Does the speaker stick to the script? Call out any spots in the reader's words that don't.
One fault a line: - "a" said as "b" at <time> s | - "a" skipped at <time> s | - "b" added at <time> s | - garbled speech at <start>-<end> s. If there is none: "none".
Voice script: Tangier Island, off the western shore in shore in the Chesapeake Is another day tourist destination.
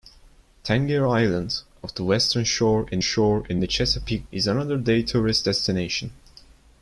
none